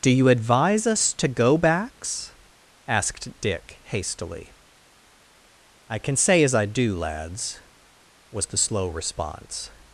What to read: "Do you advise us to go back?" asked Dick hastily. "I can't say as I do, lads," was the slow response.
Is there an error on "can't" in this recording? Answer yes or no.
yes